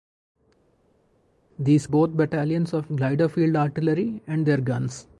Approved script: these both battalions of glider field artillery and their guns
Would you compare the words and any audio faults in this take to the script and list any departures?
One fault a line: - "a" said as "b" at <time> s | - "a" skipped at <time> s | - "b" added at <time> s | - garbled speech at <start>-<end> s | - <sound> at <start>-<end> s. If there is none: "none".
none